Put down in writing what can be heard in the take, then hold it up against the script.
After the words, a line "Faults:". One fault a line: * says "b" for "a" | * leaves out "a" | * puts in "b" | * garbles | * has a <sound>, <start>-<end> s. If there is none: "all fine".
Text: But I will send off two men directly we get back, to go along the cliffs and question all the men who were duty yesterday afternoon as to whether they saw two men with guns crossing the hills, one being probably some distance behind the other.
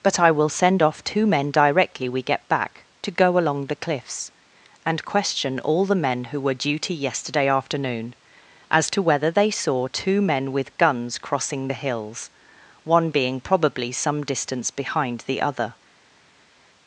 But I will send off two men directly we get back, to go along the cliffs and question all the men who were duty yesterday afternoon as to whether they saw two men with guns crossing the hills, one being probably some distance behind the other.
Faults:
all fine